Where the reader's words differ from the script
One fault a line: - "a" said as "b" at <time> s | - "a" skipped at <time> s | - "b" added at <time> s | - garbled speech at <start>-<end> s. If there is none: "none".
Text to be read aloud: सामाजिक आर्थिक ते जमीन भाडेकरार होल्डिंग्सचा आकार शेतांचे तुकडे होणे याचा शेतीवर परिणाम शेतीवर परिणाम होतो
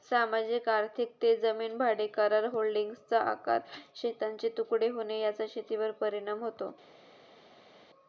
- "शेतीवर परिणाम" skipped at 6.4 s